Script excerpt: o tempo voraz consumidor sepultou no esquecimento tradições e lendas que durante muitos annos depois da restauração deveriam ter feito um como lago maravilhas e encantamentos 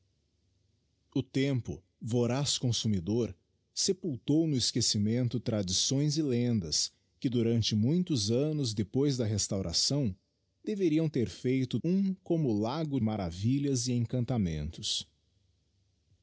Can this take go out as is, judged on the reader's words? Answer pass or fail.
pass